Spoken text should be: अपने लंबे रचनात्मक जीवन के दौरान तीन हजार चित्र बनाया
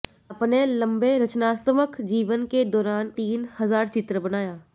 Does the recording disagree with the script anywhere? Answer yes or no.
no